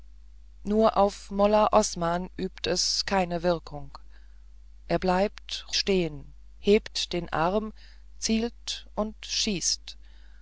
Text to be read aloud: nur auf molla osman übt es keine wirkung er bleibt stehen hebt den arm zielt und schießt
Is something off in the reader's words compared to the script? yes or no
no